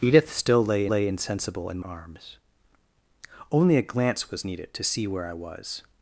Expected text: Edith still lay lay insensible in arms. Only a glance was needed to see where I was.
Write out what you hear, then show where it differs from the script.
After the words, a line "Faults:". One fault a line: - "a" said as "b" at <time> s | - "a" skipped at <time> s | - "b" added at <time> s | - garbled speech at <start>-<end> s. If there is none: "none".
Edith still lay lay insensible in arms. Only a glance was needed to see where I was.
Faults:
none